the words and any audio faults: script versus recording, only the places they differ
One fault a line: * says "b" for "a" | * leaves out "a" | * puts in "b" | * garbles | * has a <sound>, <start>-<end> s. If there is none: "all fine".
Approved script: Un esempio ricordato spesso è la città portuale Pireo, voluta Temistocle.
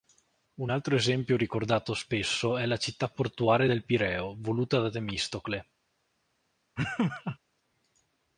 * puts in "altro"
* puts in "del"
* puts in "da"
* has a laugh, 6.8-7.4 s